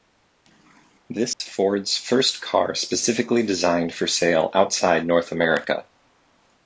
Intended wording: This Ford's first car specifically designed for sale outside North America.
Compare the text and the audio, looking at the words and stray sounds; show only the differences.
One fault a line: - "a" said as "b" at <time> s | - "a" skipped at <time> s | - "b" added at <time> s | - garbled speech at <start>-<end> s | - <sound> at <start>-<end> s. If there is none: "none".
- dropout at 1.3-1.4 s